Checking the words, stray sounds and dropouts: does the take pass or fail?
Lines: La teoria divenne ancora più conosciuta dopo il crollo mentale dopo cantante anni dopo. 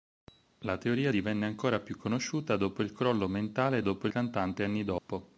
fail